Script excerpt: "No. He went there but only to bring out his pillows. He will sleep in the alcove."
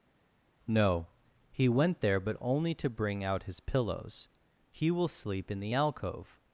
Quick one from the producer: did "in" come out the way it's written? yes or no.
yes